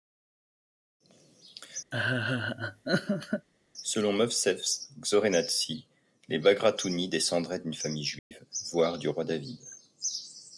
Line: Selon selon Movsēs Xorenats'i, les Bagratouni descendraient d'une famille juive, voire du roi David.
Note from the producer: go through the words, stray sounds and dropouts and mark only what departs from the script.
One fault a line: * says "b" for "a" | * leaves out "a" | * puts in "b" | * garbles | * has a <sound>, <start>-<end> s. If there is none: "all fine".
* has a laugh, 1.9-3.5 s
* leaves out "selon"
* has a dropout, 8.2-8.3 s